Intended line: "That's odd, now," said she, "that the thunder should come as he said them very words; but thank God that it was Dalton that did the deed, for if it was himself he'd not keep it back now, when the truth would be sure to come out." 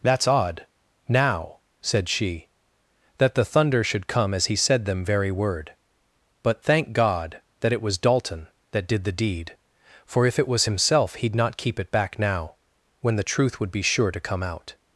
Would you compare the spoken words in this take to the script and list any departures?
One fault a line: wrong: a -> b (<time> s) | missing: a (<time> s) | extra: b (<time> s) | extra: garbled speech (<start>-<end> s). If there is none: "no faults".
wrong: words -> word (5.3 s)